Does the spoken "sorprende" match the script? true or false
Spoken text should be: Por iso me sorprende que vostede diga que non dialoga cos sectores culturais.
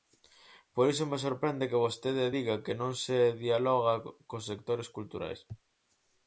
true